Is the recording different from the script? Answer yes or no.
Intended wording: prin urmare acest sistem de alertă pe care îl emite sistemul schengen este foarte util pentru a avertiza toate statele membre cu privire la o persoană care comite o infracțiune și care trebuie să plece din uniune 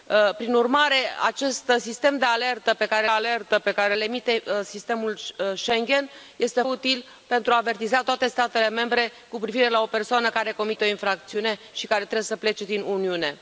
yes